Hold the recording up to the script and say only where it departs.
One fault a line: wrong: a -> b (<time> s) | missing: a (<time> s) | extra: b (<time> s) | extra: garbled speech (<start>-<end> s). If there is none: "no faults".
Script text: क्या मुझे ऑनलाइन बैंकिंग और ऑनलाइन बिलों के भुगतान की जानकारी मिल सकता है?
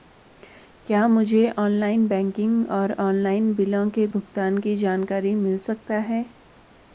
no faults